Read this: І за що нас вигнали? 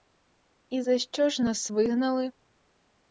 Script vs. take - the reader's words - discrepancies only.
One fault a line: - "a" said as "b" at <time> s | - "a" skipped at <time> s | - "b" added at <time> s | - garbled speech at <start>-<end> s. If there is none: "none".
- "ж" added at 1.3 s